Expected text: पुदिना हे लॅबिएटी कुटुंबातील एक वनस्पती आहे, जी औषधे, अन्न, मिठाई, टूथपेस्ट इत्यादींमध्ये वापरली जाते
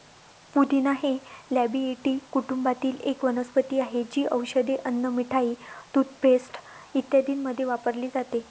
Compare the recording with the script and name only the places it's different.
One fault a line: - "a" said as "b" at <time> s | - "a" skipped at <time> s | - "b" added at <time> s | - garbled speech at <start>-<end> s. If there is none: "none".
none